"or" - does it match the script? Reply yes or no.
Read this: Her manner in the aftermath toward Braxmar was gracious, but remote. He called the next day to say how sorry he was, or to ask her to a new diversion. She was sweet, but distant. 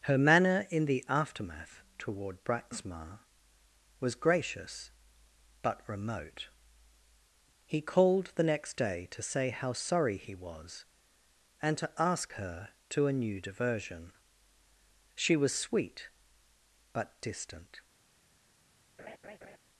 no